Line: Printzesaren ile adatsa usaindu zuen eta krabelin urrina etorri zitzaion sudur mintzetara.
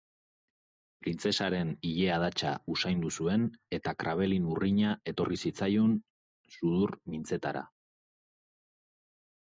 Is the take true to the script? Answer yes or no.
yes